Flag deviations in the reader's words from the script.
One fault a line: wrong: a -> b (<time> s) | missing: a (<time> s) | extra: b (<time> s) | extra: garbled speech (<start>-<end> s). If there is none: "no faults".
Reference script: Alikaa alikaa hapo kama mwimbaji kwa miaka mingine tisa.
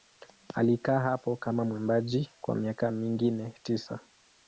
missing: alikaa (1.0 s)